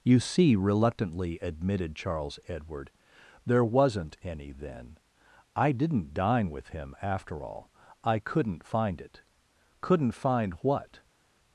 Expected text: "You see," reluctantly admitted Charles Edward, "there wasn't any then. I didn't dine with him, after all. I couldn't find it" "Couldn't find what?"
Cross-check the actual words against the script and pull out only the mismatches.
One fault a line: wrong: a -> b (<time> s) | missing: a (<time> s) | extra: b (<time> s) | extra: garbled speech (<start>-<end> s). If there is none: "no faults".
no faults